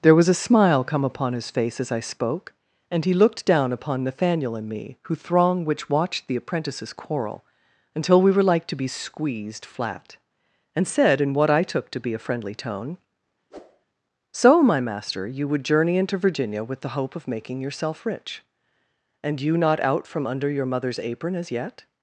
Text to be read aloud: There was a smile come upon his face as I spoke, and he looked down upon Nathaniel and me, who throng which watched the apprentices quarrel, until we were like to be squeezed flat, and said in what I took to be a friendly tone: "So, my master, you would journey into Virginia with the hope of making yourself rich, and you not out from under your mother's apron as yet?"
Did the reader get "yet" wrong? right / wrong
right